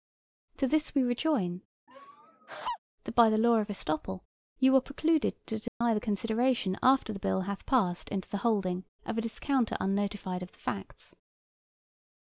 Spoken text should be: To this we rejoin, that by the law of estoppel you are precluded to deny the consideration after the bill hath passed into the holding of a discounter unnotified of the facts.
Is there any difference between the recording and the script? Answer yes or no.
no